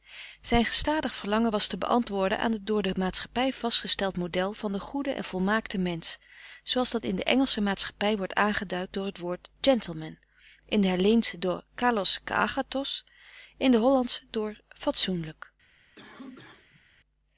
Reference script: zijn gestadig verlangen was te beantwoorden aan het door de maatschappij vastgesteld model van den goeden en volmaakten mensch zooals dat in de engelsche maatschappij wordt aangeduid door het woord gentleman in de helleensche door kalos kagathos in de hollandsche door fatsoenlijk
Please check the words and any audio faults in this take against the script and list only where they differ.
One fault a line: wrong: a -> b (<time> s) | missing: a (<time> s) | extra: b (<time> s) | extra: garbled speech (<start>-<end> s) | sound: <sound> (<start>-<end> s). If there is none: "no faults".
sound: cough (16.0-16.8 s)